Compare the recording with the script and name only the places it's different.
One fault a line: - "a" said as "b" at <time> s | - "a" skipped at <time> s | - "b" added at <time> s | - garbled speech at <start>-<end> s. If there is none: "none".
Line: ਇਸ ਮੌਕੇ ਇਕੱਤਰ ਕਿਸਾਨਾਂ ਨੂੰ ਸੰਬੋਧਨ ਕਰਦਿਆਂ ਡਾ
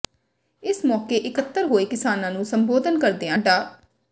- "ਹੋਏ" added at 1.6 s